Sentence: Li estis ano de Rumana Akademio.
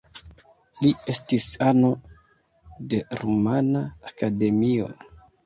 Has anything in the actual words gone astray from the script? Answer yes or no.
no